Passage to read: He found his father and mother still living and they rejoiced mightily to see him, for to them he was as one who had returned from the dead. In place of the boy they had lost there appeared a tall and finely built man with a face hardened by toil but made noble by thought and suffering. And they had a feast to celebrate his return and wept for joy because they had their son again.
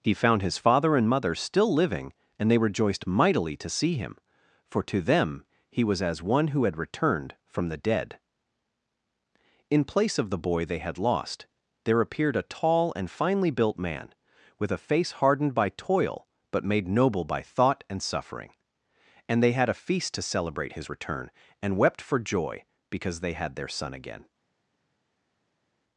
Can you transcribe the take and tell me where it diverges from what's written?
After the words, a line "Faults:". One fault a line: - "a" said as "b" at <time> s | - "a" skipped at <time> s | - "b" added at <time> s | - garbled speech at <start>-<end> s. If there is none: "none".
He found his father and mother still living and they rejoiced mightily to see him, for to them he was as one who had returned from the dead. In place of the boy they had lost there appeared a tall and finely built man with a face hardened by toil but made noble by thought and suffering. And they had a feast to celebrate his return and wept for joy because they had their son again.
Faults:
none